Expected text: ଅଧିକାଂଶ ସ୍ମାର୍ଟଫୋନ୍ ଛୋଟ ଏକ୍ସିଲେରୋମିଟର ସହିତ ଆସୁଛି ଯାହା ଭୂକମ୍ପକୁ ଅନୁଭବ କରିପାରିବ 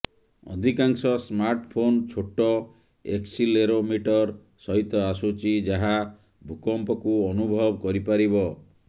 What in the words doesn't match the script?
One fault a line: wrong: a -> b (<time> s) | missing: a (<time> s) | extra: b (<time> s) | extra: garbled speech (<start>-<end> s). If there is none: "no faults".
no faults